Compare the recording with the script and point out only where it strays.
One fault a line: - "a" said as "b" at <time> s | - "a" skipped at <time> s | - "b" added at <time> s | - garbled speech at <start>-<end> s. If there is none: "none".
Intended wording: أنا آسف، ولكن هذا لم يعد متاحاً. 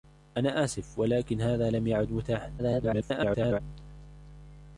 - garbled speech at 2.6-3.6 s